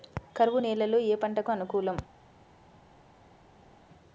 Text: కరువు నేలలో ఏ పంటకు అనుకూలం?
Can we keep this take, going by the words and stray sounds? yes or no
yes